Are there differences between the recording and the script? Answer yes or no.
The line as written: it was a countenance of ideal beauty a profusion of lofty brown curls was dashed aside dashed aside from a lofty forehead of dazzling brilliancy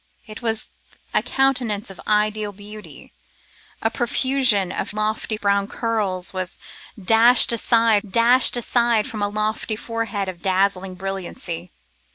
no